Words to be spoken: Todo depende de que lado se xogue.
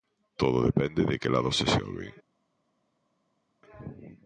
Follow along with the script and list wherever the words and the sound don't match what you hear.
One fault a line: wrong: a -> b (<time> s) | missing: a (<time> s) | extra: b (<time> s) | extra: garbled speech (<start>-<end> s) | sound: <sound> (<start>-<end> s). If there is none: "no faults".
no faults